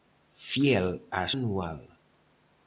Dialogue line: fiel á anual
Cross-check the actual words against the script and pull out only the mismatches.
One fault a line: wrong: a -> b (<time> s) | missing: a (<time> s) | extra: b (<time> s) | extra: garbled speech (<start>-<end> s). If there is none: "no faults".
no faults